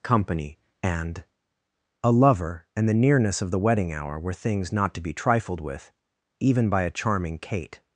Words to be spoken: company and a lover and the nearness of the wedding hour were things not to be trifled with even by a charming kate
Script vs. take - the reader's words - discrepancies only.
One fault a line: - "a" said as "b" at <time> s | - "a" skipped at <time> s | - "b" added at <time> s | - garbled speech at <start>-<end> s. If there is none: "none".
none